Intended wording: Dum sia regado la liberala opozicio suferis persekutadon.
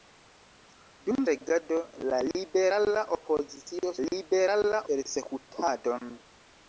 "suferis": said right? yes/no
no